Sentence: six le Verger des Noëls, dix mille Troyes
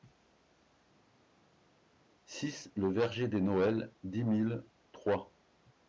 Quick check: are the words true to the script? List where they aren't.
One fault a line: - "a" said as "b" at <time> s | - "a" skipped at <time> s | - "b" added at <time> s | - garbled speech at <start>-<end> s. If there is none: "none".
none